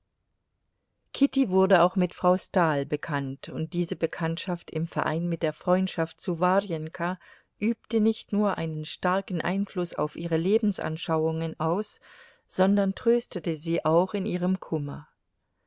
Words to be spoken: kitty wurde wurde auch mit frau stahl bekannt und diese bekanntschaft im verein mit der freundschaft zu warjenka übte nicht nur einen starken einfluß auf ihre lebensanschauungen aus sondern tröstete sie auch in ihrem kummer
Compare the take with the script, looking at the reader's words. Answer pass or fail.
fail